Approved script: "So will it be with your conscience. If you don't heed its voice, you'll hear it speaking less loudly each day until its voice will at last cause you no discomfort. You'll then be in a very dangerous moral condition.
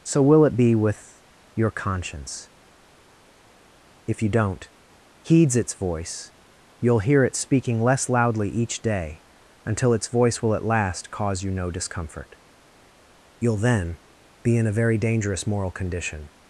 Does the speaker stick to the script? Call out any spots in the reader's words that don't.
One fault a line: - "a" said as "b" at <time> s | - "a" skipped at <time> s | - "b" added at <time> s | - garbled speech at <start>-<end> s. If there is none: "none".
- "heed" said as "heeds" at 5.2 s